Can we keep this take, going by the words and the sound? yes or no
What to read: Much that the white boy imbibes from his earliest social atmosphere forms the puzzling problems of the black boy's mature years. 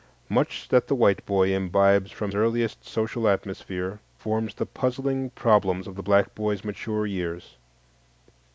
no